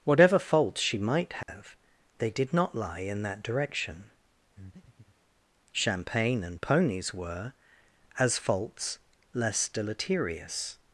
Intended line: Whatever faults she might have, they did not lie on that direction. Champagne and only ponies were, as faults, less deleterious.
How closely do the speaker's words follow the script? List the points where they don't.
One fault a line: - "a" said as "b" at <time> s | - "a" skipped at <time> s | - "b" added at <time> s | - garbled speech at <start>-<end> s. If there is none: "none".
- "on" said as "in" at 3.0 s
- "only" skipped at 6.6 s